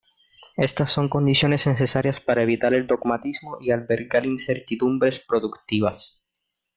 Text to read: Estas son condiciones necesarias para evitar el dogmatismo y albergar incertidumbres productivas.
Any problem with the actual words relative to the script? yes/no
no